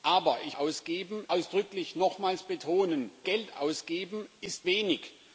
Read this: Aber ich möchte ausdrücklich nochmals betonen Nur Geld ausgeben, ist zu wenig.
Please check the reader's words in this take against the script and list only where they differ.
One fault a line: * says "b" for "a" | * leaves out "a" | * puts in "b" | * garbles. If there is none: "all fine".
* says "ausgeben" for "möchte"
* leaves out "Nur"
* leaves out "zu"